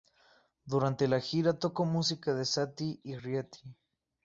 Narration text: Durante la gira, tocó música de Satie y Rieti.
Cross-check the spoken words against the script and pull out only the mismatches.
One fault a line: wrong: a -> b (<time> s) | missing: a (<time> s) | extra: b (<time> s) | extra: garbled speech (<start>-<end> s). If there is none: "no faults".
no faults